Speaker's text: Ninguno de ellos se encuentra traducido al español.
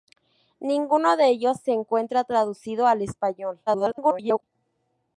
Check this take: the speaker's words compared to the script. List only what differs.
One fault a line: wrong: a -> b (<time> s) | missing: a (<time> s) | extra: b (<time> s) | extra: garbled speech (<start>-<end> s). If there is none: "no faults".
extra: garbled speech (3.7-4.4 s)